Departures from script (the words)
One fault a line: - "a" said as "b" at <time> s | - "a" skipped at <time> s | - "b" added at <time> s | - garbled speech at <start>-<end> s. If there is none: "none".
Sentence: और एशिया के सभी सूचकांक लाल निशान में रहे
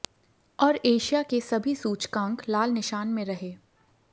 none